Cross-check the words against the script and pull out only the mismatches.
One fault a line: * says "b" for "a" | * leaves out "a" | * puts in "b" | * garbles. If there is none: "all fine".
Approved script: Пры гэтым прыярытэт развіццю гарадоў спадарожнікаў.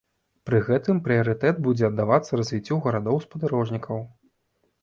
* puts in "будзе аддавацца"